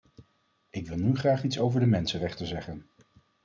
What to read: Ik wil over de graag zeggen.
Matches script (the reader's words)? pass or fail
fail